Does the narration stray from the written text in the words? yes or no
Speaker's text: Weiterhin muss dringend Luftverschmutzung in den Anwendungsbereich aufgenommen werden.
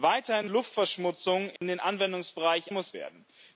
yes